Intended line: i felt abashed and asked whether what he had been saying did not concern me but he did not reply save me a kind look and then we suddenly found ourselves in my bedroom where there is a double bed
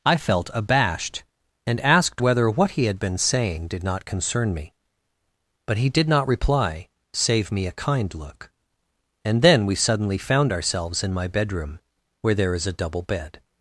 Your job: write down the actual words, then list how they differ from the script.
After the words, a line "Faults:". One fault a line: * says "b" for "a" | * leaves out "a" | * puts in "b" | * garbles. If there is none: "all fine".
i felt abashed and asked whether what he had been saying did not concern me but he did not reply save me a kind look and then we suddenly found ourselves in my bedroom where there is a double bed
Faults:
all fine